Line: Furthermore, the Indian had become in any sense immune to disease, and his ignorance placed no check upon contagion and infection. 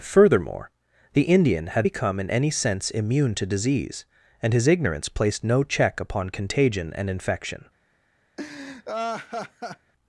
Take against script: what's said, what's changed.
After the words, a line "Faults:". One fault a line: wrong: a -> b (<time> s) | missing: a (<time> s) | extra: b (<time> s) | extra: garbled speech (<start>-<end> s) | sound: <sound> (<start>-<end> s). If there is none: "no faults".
Furthermore, the Indian had become in any sense immune to disease, and his ignorance placed no check upon contagion and infection.
Faults:
sound: laugh (8.4-9.9 s)